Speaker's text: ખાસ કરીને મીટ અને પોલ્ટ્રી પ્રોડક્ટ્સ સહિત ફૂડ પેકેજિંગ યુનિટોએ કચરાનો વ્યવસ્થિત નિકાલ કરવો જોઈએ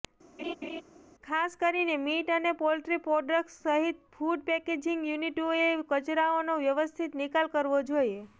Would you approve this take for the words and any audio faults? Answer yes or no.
no